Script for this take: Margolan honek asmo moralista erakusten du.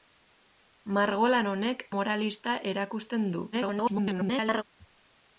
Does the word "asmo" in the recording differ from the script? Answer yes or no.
yes